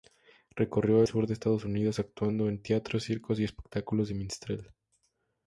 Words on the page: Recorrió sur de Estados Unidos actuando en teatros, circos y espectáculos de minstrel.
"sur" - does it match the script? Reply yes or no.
yes